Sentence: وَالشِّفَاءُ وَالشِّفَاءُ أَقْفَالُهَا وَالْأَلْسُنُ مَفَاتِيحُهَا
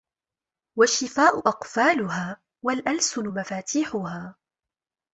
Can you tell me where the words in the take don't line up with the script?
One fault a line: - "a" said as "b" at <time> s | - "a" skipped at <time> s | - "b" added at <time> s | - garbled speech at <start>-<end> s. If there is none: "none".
- "وَالشِّفَاءُ" skipped at 1.4 s